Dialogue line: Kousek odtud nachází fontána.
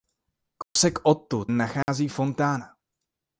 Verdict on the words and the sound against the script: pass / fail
fail